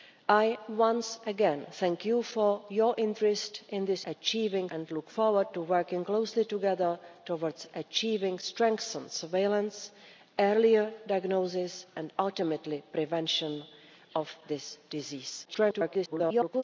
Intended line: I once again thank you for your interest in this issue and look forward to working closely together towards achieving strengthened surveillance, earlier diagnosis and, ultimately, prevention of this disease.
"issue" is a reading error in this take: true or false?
true